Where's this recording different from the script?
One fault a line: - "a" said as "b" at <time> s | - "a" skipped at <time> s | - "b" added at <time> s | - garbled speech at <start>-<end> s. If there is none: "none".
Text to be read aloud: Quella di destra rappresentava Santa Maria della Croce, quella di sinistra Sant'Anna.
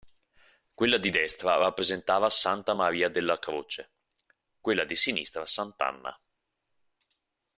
none